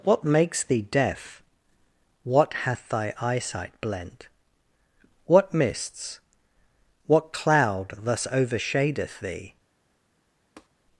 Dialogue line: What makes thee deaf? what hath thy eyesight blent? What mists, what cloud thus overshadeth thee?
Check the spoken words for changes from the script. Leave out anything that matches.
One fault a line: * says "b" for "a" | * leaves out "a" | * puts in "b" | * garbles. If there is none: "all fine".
all fine